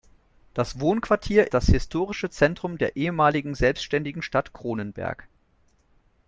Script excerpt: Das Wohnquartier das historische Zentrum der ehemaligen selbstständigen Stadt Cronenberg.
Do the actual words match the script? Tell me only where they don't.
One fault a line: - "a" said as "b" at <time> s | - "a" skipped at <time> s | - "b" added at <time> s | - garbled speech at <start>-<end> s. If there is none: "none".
none